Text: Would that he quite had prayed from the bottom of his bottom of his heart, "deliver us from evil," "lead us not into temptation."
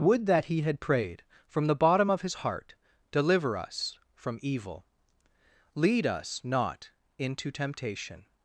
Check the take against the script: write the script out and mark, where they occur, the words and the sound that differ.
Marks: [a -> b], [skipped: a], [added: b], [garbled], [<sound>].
Would that he [skipped: quite] had prayed from the bottom of his [skipped: bottom of his] heart, "deliver us from evil," "lead us not into temptation."